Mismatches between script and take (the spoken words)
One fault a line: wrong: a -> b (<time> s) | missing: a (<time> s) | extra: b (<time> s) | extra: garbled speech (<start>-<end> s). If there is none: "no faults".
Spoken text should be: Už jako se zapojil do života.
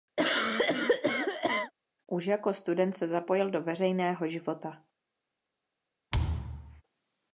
extra: student (2.5 s)
extra: veřejného (3.6 s)